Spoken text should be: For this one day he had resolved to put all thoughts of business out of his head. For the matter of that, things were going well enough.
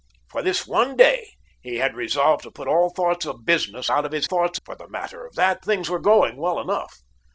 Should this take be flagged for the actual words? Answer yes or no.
yes